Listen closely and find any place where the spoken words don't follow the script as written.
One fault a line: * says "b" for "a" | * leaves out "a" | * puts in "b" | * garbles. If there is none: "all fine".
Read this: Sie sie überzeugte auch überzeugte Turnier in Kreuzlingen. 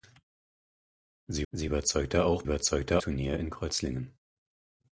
all fine